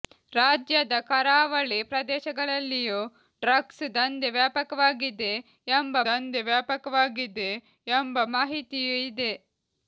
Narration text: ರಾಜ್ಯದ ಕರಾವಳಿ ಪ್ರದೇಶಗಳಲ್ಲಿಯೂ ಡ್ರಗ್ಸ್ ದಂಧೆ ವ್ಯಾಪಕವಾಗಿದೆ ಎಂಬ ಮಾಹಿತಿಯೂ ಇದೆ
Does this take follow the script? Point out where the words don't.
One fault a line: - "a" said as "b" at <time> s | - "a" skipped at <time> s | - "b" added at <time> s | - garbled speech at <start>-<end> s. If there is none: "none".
- "ದಂಧೆ ವ್ಯಾಪಕವಾಗಿದೆ ಎಂಬ" added at 6.0 s